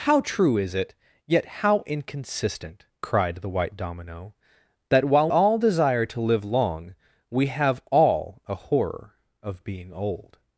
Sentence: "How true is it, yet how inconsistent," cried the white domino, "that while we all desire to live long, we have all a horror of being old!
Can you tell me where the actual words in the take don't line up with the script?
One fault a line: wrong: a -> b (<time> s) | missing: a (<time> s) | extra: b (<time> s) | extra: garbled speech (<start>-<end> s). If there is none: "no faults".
missing: we (5.3 s)